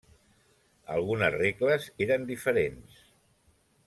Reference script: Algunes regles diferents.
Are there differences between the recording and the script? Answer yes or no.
yes